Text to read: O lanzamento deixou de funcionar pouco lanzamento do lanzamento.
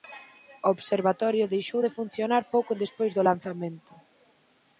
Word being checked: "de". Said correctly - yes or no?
yes